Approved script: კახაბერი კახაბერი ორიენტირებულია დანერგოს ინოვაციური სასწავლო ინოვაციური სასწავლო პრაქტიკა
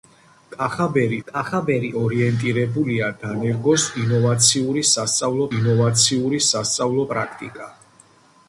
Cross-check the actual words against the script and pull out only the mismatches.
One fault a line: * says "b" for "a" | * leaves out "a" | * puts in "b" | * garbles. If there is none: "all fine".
all fine